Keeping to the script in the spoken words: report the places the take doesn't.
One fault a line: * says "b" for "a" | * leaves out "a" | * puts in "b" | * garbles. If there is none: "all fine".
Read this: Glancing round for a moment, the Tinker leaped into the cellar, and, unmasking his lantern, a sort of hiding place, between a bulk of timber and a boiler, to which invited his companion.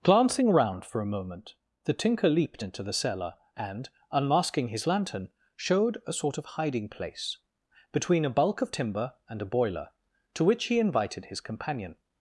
* puts in "showed"
* puts in "he"